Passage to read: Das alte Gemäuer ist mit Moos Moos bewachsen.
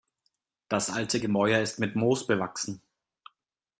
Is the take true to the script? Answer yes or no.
no